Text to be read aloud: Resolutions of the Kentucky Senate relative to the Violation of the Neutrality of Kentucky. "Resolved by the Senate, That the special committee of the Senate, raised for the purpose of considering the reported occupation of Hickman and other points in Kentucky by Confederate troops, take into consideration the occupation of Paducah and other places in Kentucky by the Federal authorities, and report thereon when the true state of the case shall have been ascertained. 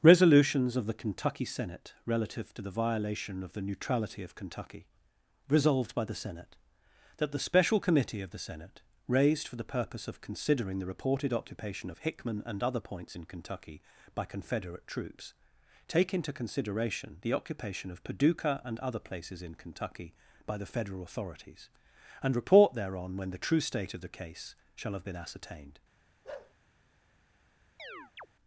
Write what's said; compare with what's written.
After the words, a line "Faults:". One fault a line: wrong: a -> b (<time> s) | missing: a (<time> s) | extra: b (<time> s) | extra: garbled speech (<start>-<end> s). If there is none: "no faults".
Resolutions of the Kentucky Senate relative to the Violation of the Neutrality of Kentucky. "Resolved by the Senate, That the special committee of the Senate, raised for the purpose of considering the reported occupation of Hickman and other points in Kentucky by Confederate troops, take into consideration the occupation of Paducah and other places in Kentucky by the Federal authorities, and report thereon when the true state of the case shall have been ascertained.
Faults:
no faults